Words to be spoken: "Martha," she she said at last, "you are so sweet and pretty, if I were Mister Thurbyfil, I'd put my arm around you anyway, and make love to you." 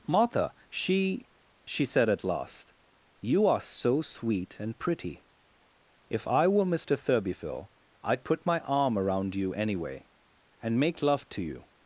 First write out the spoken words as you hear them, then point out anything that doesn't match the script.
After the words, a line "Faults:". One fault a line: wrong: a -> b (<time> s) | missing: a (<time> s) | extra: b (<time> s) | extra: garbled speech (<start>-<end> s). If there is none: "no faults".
"Martha," she she said at last, "you are so sweet and pretty, if I were Mister Thurbyfil, I'd put my arm around you anyway, and make love to you."
Faults:
no faults